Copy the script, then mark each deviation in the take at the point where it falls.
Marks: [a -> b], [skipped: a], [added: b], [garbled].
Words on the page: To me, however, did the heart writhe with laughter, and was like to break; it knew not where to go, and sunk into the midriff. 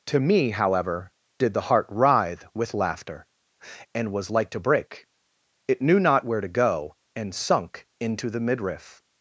To me, however, did the heart writhe with laughter, and was like to break; it knew not where to go, and sunk into the midriff.